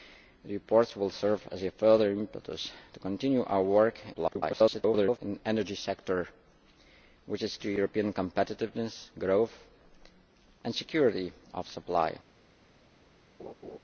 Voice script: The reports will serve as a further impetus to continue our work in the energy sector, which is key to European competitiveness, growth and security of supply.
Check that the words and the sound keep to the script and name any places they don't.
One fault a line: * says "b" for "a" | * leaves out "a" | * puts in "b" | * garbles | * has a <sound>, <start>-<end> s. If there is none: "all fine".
* garbles
* leaves out "key"
* has a laugh, 13.4-13.8 s